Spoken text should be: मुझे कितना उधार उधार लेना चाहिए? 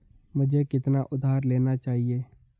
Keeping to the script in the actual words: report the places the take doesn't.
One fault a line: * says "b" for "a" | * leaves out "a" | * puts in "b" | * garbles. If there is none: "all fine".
* leaves out "उधार"